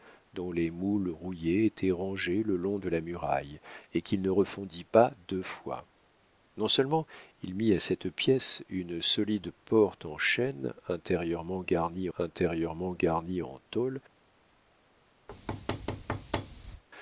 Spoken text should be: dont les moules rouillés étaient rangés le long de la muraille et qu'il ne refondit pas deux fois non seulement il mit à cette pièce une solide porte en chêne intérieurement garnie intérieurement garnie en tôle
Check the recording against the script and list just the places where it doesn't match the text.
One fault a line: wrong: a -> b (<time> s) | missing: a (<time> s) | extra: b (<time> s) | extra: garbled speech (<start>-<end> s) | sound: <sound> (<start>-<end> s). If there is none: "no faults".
sound: thud (15.3-16.8 s)